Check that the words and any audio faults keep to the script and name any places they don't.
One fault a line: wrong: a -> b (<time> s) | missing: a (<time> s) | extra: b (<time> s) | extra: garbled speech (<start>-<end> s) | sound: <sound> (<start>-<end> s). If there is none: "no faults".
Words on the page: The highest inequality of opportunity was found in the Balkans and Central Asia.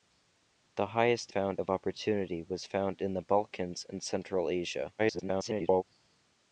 wrong: inequality -> found (1.3 s)
extra: garbled speech (5.0-5.8 s)